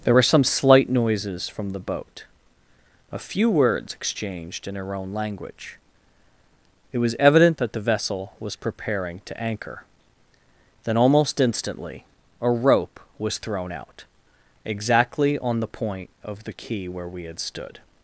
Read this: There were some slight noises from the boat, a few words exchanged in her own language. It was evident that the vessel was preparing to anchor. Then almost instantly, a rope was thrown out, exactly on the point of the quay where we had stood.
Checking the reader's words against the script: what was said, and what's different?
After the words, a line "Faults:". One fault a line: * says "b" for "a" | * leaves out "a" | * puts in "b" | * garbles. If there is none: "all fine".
There were some slight noises from the boat, a few words exchanged in her own language. It was evident that the vessel was preparing to anchor. Then almost instantly, a rope was thrown out, exactly on the point of the quay where we had stood.
Faults:
all fine